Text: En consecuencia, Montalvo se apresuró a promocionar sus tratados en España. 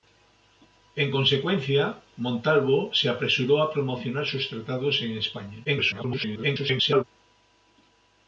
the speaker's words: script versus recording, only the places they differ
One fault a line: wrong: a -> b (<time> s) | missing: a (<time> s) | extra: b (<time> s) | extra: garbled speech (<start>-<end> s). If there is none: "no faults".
extra: garbled speech (5.6-7.0 s)